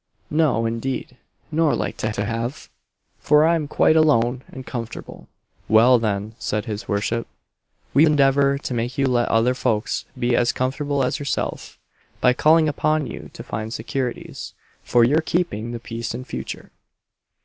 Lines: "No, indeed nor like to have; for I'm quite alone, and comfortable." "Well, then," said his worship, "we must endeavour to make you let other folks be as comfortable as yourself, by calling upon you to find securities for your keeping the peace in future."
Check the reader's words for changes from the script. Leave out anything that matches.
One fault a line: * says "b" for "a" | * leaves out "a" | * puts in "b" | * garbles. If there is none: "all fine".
* puts in "to"
* leaves out "must"